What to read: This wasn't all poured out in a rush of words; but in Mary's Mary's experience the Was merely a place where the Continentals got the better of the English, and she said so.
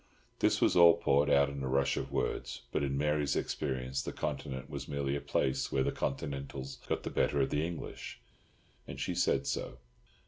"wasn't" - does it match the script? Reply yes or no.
no